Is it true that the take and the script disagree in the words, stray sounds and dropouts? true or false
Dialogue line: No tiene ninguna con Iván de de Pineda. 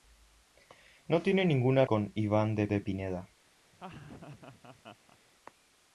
true